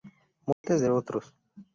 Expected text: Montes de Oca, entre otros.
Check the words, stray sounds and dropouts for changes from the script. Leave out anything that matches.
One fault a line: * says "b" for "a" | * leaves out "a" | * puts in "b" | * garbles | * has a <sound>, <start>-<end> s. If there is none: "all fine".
* has a dropout, 0.5-0.6 s
* leaves out "Oca entre"